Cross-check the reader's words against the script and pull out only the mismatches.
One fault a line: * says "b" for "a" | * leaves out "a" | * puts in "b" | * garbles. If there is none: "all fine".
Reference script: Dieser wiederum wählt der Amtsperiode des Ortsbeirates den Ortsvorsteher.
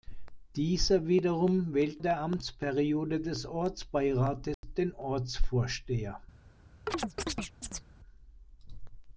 all fine